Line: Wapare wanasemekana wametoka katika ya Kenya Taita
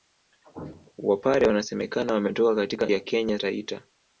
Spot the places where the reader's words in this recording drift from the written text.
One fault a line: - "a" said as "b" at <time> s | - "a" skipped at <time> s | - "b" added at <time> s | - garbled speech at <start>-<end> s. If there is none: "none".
none